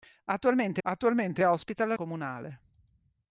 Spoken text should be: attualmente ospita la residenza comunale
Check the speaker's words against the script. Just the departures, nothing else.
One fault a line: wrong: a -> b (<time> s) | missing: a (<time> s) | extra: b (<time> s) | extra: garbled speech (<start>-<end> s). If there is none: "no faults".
extra: attualmente (0.8 s)
missing: residenza (1.9 s)